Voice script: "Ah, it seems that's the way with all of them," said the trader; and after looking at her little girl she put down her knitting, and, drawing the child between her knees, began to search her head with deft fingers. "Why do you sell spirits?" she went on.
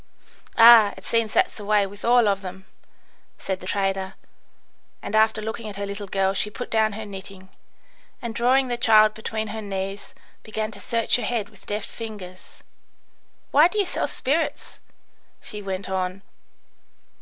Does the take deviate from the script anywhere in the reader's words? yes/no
no